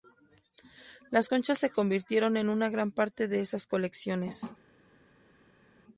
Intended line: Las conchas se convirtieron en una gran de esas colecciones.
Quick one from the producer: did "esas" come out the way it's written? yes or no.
yes